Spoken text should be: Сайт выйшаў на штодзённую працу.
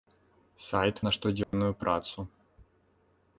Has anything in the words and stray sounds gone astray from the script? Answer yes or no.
yes